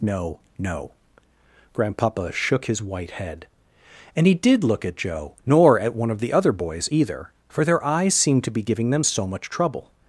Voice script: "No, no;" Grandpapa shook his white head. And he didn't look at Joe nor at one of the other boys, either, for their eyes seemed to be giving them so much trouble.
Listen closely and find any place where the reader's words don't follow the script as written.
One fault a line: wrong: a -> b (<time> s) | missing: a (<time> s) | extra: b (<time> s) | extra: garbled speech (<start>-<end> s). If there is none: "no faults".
wrong: didn't -> did (4.3 s)